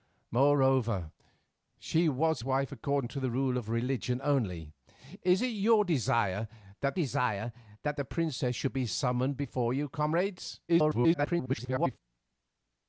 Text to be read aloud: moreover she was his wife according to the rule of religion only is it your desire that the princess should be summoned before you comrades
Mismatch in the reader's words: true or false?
true